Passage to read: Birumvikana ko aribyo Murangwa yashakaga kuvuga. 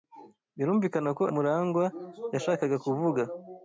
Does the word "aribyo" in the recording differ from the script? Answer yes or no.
yes